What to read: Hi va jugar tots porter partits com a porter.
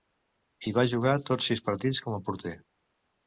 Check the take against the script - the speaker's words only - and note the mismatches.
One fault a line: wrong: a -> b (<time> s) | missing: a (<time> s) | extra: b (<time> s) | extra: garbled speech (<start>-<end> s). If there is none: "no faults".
wrong: porter -> sis (1.5 s)